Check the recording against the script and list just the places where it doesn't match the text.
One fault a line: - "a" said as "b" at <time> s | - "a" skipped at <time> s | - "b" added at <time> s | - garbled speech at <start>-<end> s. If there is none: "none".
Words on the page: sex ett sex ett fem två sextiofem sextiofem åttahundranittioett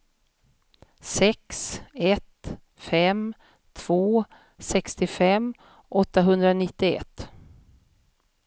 - "sex ett" skipped at 2.6 s
- "sextiofem" skipped at 5.5 s